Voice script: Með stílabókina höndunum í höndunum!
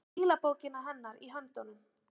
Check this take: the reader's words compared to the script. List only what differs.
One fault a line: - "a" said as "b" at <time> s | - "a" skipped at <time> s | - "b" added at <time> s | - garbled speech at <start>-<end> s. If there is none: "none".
- "höndunum" said as "hennar" at 0.9 s